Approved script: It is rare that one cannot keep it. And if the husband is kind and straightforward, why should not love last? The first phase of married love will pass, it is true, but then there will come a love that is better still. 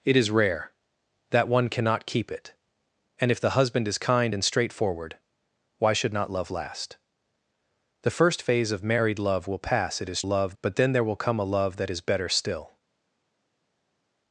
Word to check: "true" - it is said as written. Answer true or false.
false